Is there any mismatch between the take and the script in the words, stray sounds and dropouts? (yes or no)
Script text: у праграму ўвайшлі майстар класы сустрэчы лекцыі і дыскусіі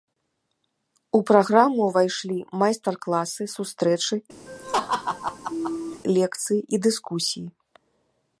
yes